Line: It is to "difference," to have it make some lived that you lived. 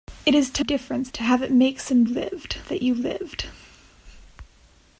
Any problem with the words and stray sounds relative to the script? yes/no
no